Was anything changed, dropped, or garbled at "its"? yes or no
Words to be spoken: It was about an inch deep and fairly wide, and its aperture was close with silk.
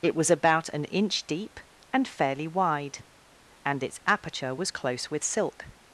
no